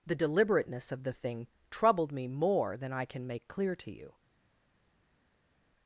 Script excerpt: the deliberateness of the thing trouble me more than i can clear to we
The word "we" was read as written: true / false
false